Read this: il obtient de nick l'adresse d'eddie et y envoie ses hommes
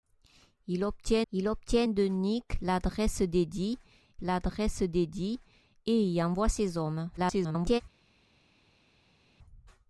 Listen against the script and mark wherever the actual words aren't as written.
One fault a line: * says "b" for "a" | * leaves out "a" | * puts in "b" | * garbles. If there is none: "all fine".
* puts in "il obtient"
* puts in "l'adresse d'eddie"
* garbles